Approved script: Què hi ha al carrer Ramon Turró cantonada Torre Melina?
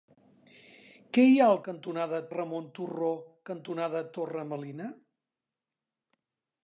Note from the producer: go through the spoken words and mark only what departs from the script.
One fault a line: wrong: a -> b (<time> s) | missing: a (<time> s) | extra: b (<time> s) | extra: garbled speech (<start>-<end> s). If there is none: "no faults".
wrong: carrer -> cantonada (1.7 s)